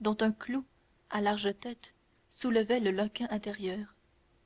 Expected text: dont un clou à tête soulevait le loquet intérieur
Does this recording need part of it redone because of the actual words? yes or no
yes